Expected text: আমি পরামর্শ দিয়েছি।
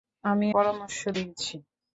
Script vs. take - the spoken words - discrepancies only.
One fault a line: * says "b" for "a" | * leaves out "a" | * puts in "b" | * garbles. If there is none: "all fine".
all fine